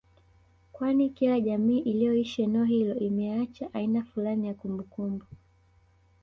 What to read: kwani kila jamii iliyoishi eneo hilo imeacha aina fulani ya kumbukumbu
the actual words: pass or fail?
pass